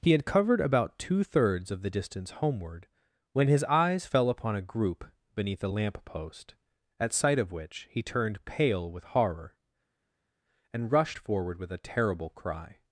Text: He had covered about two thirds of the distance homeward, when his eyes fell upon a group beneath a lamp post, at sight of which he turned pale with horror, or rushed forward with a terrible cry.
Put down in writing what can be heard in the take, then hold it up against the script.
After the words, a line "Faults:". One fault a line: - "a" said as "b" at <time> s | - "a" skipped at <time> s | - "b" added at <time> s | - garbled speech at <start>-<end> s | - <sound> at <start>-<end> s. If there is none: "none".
He had covered about two thirds of the distance homeward, when his eyes fell upon a group beneath a lamp post, at sight of which he turned pale with horror, and rushed forward with a terrible cry.
Faults:
- "or" said as "and" at 10.7 s